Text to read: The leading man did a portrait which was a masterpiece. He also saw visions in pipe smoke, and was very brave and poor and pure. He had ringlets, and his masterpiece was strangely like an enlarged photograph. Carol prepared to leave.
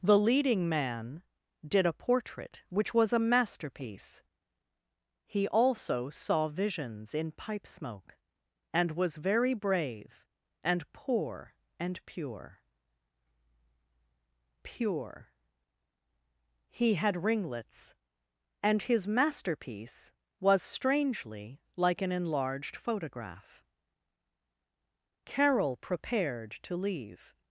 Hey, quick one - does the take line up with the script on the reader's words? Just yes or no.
no